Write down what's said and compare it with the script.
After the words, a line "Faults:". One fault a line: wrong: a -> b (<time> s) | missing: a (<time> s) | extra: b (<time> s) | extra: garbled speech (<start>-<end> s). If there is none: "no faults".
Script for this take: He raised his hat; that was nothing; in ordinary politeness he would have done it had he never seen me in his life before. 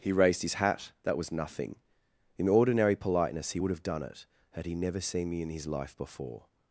He raised his hat; that was nothing; in ordinary politeness he would have done it had he never seen me in his life before.
Faults:
no faults